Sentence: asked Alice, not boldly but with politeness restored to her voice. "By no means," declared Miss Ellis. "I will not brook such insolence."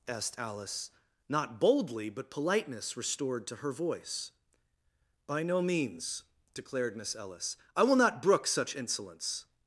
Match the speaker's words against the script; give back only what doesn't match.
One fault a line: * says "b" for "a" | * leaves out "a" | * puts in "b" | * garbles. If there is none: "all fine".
* leaves out "with"